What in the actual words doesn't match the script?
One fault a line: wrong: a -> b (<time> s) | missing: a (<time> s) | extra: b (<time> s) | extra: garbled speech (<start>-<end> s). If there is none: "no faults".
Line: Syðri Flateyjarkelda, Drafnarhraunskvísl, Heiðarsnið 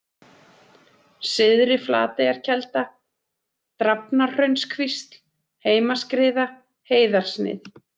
extra: Heimaskriða (5.7 s)